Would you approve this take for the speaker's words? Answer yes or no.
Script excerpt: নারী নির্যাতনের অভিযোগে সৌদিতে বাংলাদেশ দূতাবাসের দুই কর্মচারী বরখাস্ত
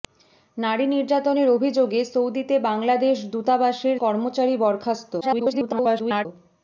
no